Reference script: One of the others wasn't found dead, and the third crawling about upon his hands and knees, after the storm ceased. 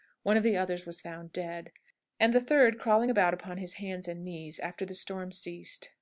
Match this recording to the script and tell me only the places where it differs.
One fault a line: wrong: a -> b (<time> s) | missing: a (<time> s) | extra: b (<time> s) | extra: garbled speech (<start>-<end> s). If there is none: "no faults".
wrong: wasn't -> was (0.9 s)